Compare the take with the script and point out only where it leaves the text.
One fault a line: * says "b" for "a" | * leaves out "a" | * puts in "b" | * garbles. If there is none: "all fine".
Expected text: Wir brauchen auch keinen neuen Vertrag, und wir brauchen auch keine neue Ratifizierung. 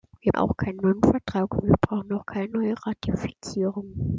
* leaves out "brauchen"